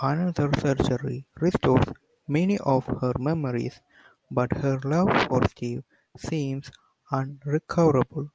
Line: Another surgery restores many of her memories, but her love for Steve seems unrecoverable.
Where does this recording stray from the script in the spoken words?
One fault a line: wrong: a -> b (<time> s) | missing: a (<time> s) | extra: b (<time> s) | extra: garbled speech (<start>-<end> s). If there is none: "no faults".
no faults